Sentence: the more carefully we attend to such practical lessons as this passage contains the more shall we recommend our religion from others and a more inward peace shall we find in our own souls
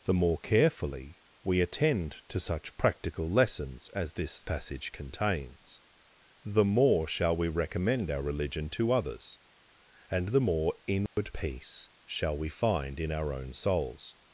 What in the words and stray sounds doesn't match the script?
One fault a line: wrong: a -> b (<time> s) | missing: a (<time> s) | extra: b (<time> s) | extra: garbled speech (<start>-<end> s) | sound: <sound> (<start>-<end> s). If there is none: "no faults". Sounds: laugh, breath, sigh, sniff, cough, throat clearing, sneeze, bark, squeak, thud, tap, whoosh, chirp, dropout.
wrong: from -> to (8.7 s)
wrong: a -> the (10.3 s)
sound: dropout (11.1-11.2 s)